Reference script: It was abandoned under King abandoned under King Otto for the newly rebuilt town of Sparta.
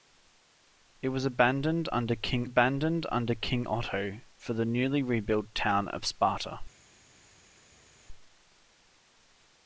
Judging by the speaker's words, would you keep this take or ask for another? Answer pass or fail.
pass